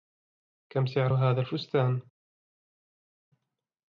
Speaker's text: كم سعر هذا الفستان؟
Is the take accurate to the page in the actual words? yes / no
yes